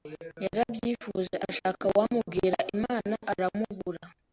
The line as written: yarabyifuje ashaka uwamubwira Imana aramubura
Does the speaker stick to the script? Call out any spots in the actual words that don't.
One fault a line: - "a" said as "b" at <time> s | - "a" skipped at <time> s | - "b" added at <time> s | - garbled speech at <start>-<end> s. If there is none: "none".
none